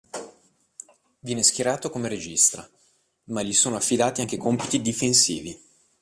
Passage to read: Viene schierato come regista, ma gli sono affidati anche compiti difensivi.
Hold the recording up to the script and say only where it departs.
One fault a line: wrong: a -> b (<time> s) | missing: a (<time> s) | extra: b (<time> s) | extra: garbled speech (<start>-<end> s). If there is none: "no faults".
no faults